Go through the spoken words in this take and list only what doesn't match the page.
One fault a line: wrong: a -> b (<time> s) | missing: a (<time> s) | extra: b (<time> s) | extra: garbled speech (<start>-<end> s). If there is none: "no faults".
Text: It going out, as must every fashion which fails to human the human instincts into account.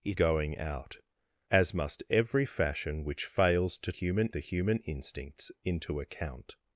no faults